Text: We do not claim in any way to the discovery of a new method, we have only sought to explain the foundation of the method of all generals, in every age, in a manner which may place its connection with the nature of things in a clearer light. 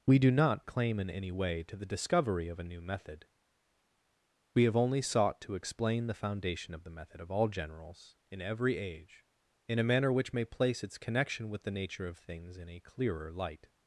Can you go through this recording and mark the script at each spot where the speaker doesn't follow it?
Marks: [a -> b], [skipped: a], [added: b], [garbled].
We do not claim in any way to the discovery of a new method, we have only sought to explain the foundation of the method of all generals, in every age, in a manner which may place its connection with the nature of things in a clearer light.